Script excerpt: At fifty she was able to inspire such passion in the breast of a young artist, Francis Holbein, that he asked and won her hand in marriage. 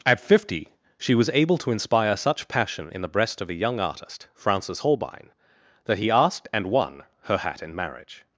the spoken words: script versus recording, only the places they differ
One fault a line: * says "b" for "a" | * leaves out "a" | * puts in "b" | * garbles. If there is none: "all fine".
* says "hat" for "hand"